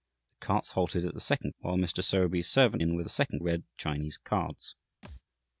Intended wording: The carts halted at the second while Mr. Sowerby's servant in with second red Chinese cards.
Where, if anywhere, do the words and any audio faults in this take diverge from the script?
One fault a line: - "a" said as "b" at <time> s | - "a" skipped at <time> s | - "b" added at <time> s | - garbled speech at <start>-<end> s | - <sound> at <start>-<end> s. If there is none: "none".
- thud at 5.0-5.2 s